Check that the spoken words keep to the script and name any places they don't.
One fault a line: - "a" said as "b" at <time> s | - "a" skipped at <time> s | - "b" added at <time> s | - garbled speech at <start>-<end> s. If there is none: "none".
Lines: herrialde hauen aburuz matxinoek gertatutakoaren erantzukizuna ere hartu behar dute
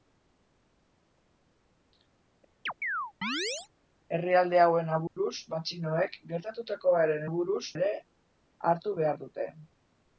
- "erantzukizuna" said as "aburuz" at 7.3 s